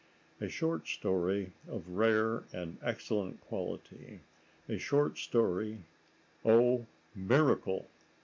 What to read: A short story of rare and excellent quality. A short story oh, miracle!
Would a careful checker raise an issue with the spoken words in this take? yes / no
no